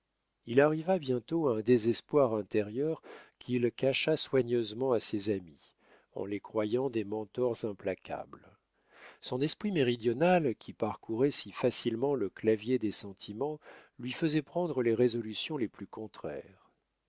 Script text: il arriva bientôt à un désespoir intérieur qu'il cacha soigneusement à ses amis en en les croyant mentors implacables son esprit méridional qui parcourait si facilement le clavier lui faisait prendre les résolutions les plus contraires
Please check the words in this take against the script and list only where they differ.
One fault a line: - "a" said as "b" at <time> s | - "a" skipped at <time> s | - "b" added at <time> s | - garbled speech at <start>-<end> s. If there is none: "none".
- "en" skipped at 6.2 s
- "des" added at 6.9 s
- "des sentiments" added at 12.8 s